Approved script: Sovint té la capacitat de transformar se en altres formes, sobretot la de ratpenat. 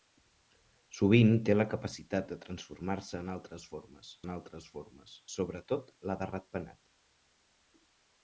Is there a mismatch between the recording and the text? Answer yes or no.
yes